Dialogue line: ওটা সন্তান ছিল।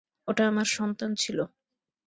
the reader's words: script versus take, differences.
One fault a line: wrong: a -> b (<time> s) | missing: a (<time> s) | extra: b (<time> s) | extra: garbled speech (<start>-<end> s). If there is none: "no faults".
extra: আমার (0.5 s)